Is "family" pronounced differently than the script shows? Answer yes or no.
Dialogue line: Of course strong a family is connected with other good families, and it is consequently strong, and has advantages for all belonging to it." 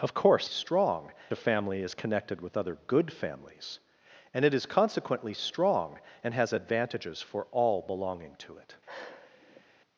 no